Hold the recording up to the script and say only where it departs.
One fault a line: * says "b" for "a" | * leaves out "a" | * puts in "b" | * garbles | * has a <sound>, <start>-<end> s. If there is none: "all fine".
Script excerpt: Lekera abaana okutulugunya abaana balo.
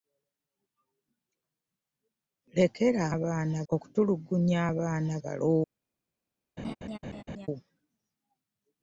* has a laugh, 6.6-7.5 s